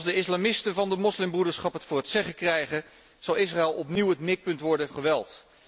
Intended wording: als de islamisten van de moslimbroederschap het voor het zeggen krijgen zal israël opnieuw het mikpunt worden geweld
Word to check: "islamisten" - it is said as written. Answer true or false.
true